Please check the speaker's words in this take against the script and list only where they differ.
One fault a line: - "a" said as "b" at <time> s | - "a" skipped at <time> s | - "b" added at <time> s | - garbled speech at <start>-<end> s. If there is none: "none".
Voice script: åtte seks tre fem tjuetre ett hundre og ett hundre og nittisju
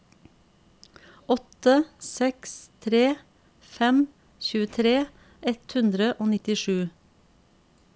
- "ett hundre og" skipped at 6.3 s